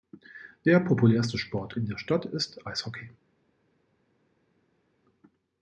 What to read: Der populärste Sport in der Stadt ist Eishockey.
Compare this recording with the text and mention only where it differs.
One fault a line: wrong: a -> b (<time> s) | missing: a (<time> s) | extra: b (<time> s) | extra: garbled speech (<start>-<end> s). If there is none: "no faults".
no faults